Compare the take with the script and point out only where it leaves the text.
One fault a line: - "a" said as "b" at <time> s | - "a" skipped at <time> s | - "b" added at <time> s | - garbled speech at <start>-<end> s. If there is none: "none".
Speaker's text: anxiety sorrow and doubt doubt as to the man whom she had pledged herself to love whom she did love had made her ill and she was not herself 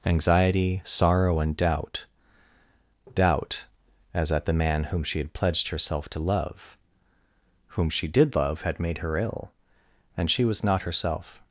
- "to" said as "at" at 4.3 s